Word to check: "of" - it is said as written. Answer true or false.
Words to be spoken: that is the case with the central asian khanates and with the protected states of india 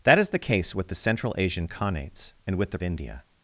false